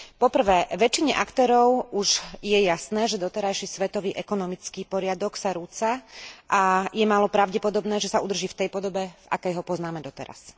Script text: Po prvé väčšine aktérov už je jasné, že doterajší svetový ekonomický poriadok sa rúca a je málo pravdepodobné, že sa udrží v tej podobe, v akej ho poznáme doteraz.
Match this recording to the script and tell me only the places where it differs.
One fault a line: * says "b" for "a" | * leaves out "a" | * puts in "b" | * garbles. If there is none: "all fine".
all fine